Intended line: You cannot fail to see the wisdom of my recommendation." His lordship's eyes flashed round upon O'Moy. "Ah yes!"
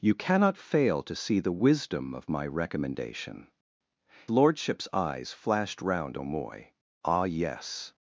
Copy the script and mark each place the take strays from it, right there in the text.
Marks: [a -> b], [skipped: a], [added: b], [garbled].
You cannot fail to see the wisdom of my recommendation." [skipped: His] lordship's eyes flashed round [skipped: upon] O'Moy. "Ah yes!"